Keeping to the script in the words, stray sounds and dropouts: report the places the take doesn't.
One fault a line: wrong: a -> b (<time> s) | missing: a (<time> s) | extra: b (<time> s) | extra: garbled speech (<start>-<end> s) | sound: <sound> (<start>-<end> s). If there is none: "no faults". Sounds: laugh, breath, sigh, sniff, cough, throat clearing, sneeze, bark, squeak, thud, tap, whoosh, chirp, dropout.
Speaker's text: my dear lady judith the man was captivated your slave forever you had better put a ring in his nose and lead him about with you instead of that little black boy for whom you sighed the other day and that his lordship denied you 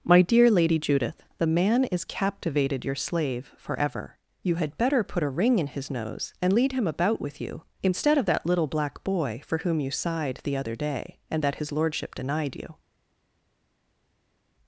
wrong: was -> is (1.8 s)